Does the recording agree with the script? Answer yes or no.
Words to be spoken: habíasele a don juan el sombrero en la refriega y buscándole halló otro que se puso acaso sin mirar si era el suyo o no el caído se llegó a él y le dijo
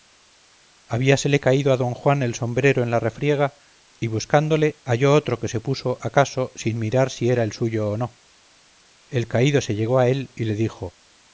no